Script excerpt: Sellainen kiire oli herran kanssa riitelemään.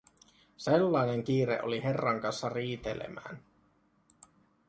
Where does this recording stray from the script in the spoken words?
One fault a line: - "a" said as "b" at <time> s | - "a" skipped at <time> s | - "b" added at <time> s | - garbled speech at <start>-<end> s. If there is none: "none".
none